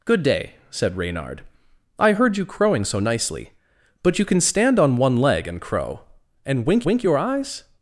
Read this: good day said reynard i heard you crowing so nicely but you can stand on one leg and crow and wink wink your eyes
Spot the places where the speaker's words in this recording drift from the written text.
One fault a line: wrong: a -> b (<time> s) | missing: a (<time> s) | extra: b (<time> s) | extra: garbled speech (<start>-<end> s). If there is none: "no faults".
no faults